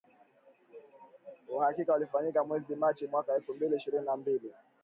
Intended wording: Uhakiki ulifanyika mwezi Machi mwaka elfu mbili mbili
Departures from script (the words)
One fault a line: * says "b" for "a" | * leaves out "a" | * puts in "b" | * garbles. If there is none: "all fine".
* puts in "ishirini na"